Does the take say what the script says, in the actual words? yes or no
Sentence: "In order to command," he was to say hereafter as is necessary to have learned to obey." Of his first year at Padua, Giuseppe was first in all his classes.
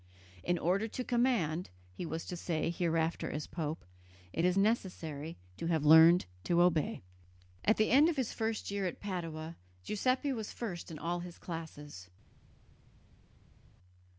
no